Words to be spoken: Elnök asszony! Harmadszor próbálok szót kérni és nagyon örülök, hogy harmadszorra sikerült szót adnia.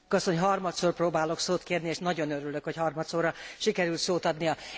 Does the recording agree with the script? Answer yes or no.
yes